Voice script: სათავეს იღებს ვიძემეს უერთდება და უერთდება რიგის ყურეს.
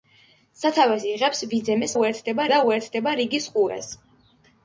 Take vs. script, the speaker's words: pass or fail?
pass